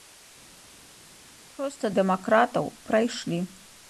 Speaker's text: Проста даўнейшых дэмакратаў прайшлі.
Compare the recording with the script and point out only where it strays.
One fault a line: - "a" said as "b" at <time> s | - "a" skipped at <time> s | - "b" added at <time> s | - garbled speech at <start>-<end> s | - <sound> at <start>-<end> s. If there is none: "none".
- "даўнейшых" skipped at 1.9 s